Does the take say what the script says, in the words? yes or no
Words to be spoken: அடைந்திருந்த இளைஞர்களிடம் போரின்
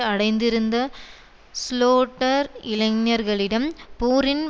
no